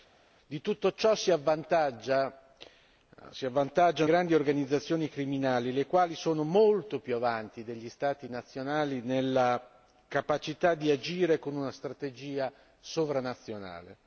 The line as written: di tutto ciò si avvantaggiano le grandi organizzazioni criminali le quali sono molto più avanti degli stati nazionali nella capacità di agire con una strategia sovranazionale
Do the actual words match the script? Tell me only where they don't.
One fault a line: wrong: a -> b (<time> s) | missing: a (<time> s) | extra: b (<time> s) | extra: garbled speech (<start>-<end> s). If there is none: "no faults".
missing: le (2.3 s)